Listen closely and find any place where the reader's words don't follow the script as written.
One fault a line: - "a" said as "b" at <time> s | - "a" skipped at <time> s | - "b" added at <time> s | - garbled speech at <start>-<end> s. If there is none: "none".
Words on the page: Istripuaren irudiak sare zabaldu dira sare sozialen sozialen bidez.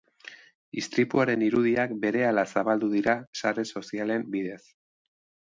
- "sare" said as "berehala" at 2.0 s
- "sozialen" skipped at 4.3 s